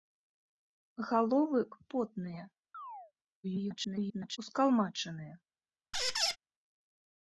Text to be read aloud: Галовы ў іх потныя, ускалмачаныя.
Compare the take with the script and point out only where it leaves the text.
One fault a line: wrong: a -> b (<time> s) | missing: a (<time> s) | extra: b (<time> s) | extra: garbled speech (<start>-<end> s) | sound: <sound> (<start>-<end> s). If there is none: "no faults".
missing: ў (1.6 s)
sound: chirp (2.7-3.1 s)
extra: garbled speech (3.4-4.4 s)
sound: squeak (5.9-6.4 s)